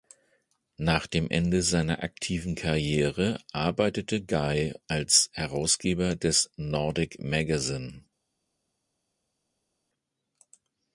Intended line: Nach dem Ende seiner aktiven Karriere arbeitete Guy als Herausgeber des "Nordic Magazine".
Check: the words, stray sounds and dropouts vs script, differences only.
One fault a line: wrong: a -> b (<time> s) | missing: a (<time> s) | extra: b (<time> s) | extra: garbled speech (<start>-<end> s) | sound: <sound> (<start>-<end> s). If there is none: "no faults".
no faults